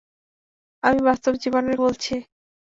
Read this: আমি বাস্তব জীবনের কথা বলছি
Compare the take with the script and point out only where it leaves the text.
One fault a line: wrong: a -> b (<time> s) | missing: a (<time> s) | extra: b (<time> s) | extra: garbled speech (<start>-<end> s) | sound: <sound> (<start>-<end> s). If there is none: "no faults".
missing: কথা (1.8 s)